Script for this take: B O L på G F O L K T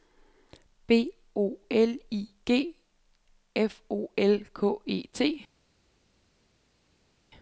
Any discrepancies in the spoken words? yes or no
yes